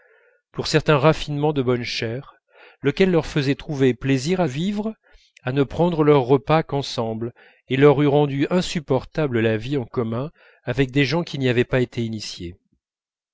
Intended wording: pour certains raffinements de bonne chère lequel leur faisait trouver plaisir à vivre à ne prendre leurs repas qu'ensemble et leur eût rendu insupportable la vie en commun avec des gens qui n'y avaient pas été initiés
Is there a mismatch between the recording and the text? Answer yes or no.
no